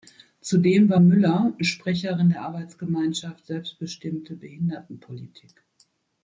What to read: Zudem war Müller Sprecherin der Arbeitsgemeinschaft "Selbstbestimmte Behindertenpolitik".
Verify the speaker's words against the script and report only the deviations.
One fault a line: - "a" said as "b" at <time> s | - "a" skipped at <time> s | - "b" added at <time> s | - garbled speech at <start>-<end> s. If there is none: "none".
none